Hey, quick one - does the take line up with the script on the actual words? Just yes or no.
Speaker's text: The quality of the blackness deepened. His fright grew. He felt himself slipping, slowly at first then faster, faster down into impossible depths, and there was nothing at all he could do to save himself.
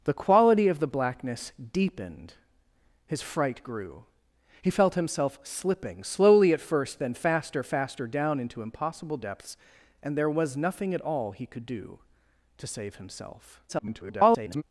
no